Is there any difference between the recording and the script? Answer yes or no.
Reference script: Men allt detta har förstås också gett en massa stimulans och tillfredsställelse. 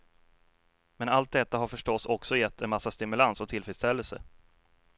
no